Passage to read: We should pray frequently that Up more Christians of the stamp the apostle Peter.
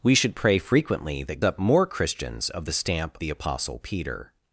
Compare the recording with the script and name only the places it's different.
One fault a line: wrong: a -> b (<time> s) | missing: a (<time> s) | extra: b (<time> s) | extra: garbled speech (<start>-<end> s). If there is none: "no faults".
no faults